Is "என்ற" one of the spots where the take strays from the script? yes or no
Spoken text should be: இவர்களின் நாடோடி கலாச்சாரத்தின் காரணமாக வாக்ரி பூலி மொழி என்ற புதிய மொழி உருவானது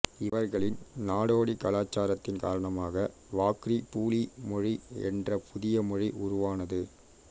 no